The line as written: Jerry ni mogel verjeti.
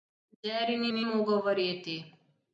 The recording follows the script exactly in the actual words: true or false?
false